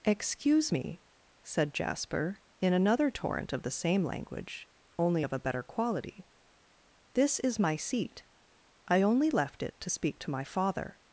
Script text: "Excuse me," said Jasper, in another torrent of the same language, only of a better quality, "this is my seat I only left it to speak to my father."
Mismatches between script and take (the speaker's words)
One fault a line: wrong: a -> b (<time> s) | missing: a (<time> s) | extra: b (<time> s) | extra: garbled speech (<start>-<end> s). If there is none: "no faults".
no faults